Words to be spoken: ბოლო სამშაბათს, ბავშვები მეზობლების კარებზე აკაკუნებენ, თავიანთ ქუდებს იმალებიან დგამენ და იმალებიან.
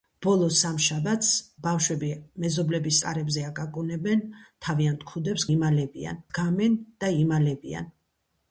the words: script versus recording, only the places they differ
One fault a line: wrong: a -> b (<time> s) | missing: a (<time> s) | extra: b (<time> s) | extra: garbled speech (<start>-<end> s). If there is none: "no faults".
no faults